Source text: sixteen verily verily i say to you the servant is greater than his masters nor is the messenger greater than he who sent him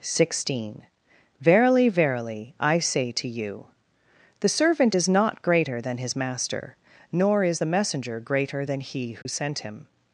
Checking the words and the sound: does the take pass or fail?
fail